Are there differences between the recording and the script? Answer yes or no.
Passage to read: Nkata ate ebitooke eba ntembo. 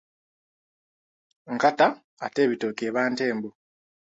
no